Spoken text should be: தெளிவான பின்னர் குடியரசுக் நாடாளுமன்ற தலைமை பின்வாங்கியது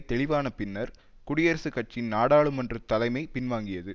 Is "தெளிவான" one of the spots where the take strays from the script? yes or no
no